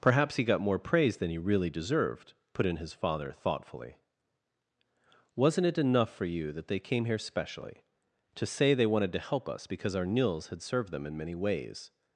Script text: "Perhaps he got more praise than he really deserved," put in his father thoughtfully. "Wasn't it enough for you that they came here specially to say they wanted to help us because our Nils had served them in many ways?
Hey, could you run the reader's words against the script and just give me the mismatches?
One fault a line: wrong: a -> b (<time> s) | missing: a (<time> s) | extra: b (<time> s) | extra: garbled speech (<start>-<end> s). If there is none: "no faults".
no faults